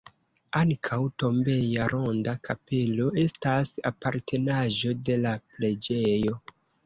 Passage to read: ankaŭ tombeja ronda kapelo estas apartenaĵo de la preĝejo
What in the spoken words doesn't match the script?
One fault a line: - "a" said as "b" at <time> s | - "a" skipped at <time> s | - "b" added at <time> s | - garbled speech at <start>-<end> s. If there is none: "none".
none